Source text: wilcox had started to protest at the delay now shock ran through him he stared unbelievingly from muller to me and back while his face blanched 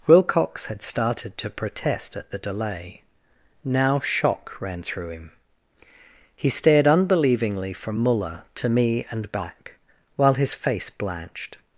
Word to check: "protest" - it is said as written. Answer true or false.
true